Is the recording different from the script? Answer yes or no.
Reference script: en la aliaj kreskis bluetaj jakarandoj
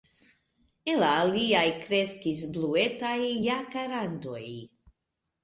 no